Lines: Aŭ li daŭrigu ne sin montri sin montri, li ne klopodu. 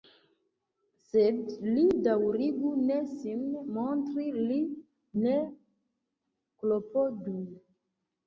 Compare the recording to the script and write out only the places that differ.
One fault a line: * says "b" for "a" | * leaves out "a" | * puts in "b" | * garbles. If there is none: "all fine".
* says "Sed" for "Aŭ"
* leaves out "sin montri"